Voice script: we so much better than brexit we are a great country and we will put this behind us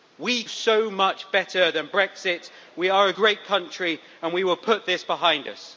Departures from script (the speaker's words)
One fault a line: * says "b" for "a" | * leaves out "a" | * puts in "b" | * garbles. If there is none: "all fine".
all fine